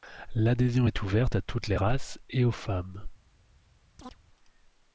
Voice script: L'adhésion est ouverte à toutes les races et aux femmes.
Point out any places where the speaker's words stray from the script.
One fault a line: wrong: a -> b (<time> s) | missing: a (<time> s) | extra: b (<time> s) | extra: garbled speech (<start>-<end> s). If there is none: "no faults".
no faults